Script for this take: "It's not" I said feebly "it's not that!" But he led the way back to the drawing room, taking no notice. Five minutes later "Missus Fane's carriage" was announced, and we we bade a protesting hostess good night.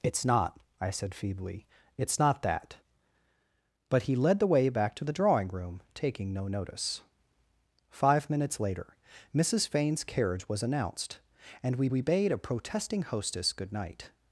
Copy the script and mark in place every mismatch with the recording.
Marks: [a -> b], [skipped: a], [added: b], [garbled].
"It's not" I said feebly "it's not that!" But he led the way back to the drawing room, taking no notice. Five minutes later "Missus Fane's carriage" was announced, and we we bade a protesting hostess good night.